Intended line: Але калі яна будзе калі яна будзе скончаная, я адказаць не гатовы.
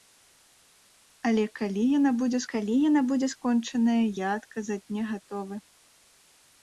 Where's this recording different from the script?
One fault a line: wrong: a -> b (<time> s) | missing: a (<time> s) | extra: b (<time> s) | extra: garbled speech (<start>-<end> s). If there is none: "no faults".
no faults